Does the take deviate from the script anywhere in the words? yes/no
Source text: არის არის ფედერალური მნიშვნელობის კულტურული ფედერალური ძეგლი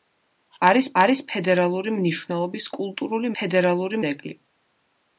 no